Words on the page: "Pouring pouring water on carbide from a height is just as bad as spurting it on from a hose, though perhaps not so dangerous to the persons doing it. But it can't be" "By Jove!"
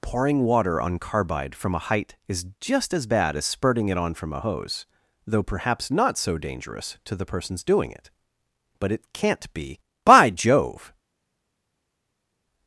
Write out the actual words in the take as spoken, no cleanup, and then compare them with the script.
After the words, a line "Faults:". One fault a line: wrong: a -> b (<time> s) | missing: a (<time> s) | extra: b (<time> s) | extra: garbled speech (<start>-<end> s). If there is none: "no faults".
"Pouring water on carbide from a height is just as bad as spurting it on from a hose, though perhaps not so dangerous to the persons doing it. But it can't be" "By Jove!"
Faults:
missing: pouring (0.4 s)